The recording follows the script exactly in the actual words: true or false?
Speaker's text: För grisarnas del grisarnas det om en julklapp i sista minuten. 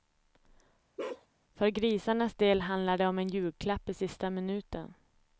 false